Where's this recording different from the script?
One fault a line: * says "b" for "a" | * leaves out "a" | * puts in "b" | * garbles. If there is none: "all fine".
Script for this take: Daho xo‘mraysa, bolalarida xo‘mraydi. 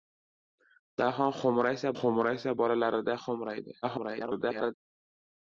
* puts in "xo‘mraysa"
* garbles